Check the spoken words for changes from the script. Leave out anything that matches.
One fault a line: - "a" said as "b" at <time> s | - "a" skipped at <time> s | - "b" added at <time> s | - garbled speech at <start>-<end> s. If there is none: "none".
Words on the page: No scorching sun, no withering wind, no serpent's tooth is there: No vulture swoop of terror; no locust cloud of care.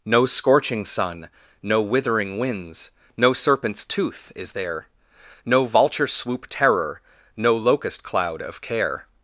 - "wind" said as "winds" at 2.4 s
- "of" skipped at 6.5 s